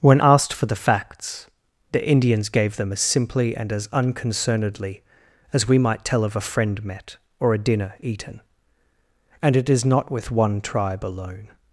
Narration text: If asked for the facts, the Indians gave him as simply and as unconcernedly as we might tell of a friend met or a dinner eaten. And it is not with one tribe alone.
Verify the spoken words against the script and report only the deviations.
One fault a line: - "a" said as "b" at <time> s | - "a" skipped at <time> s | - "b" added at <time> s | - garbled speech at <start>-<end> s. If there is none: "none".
- "If" said as "When" at 0.0 s
- "him" said as "them" at 2.8 s